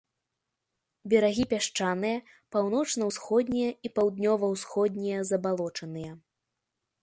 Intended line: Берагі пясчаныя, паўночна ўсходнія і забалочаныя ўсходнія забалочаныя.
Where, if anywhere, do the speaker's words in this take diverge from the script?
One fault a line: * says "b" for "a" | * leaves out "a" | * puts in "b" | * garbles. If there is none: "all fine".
* says "паўднёва" for "забалочаныя"